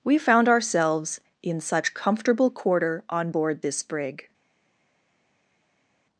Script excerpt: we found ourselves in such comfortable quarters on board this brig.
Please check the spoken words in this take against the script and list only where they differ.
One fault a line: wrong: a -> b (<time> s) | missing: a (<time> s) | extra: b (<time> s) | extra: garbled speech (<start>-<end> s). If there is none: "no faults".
wrong: quarters -> quarter (2.5 s)